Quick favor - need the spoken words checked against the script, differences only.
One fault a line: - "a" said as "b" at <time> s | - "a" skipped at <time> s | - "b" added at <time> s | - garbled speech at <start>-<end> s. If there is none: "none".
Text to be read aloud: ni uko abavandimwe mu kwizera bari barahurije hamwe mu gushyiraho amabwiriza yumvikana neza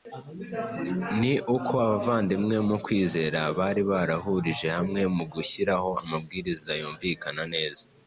none